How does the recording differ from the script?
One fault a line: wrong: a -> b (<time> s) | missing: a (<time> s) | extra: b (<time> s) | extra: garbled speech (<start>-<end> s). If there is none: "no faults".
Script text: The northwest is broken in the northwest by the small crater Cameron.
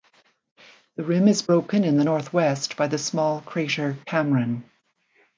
wrong: northwest -> rim (1.0 s)